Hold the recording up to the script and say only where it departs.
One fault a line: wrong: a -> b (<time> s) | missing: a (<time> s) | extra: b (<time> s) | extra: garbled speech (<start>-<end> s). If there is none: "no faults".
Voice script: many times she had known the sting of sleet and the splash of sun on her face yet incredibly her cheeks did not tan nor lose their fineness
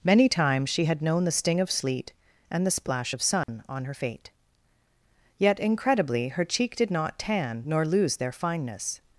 wrong: face -> fate (3.9 s)
wrong: cheeks -> cheek (6.4 s)